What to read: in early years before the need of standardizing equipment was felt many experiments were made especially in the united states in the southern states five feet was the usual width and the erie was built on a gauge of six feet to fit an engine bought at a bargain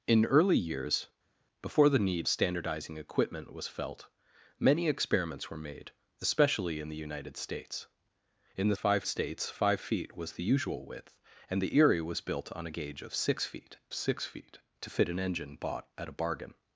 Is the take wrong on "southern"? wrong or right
wrong